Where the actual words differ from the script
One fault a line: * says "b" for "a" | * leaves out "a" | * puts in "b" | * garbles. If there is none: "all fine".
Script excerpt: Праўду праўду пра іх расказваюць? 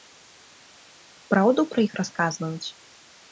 * leaves out "праўду"